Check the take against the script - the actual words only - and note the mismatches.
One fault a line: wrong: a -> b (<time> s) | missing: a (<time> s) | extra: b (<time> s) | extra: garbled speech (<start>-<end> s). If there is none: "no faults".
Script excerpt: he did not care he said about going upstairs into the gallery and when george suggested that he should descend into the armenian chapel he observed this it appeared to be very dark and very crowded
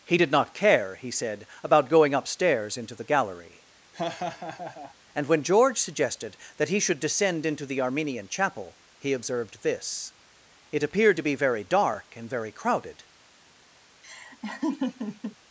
no faults